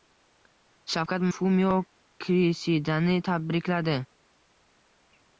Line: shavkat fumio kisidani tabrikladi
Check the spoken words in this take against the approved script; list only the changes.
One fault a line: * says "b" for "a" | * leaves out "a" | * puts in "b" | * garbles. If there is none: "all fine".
all fine